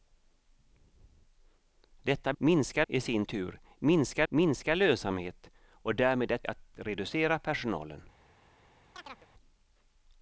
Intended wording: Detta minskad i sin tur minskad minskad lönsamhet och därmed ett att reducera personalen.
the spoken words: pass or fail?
pass